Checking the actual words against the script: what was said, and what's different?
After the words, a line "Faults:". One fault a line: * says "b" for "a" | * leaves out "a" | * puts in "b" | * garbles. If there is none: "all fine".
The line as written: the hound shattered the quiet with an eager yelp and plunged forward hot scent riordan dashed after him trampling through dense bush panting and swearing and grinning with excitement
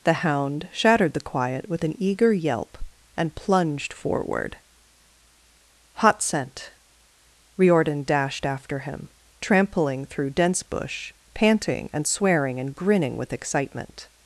the hound shattered the quiet with an eager yelp and plunged forward hot scent riordan dashed after him trampling through dense bush panting and swearing and grinning with excitement
Faults:
all fine